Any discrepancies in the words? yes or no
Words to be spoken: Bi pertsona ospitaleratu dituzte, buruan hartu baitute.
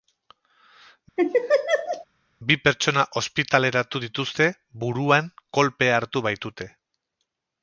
yes